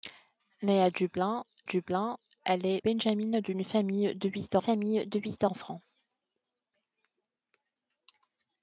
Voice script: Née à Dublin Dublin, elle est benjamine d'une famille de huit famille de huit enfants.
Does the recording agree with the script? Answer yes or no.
yes